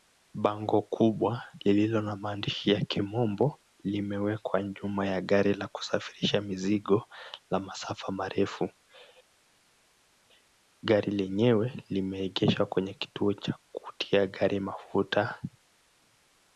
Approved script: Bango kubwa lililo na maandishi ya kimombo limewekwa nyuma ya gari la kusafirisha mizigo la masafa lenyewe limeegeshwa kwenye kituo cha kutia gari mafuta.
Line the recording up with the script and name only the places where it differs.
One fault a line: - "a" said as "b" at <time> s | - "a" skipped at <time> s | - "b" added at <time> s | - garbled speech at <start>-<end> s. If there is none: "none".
- "marefu Gari" added at 8.1 s